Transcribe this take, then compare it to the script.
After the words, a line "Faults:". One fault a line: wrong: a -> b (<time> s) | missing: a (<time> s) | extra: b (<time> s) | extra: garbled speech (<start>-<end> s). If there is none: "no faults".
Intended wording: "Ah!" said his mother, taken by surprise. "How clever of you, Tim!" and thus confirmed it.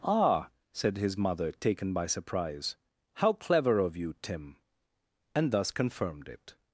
"Ah!" said his mother, taken by surprise. "How clever of you, Tim!" and thus confirmed it.
Faults:
no faults